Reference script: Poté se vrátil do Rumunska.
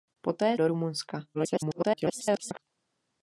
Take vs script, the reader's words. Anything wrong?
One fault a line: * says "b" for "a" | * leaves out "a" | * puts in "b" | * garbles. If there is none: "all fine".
* leaves out "se vrátil"
* garbles